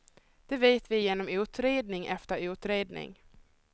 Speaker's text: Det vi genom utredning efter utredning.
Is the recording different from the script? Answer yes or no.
yes